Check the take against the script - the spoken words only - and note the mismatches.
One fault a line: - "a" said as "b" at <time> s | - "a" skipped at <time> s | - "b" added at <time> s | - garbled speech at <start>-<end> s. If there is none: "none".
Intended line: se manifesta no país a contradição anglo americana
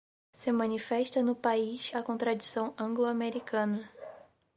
none